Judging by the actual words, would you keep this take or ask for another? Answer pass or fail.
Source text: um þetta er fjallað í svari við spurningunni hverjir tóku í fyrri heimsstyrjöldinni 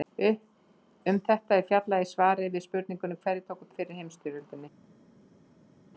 pass